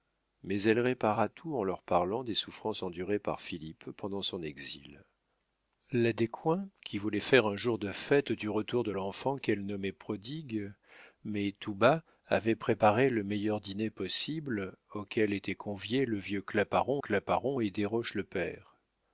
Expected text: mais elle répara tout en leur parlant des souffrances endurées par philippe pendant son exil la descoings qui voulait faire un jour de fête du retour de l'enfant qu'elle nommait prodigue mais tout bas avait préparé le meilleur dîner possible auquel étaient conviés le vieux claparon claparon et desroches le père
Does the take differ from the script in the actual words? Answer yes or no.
no